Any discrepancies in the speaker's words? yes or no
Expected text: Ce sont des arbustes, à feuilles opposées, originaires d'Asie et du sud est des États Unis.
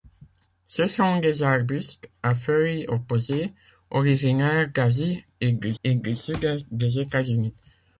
yes